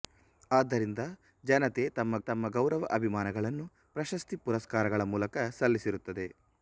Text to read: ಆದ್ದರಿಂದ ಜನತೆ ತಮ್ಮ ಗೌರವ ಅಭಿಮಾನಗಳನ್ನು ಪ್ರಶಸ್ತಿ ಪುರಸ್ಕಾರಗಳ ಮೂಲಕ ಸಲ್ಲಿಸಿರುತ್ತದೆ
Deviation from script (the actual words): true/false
true